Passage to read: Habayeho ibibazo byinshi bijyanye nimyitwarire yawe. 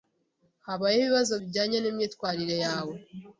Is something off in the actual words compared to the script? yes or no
yes